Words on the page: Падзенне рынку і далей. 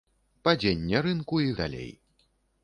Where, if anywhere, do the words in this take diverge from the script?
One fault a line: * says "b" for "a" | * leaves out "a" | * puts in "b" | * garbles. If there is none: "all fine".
all fine